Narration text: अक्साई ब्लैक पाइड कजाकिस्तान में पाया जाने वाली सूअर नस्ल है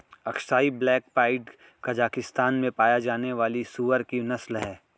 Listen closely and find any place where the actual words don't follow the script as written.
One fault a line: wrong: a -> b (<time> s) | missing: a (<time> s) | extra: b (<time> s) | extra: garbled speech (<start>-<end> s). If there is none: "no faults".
extra: की (4.0 s)